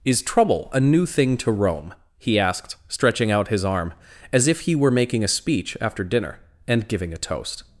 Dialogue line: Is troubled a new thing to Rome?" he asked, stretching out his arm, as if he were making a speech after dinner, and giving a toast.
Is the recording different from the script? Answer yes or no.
yes